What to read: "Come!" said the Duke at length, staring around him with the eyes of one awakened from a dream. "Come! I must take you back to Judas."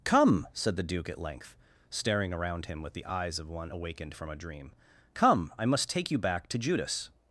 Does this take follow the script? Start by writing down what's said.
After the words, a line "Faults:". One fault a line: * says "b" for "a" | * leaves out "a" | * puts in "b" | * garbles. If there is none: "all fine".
"Come!" said the Duke at length, staring around him with the eyes of one awakened from a dream. "Come! I must take you back to Judas."
Faults:
all fine